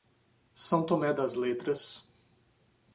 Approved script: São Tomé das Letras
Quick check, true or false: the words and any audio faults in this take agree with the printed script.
true